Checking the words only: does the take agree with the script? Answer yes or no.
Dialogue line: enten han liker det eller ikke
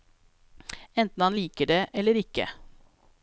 yes